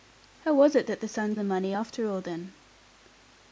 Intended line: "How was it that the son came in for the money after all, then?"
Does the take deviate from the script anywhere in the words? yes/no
yes